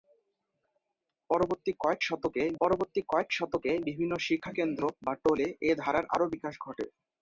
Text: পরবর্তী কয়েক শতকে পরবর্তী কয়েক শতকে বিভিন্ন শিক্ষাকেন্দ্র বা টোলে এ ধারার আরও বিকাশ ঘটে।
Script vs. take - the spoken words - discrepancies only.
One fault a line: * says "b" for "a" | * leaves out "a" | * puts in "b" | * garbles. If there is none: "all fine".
all fine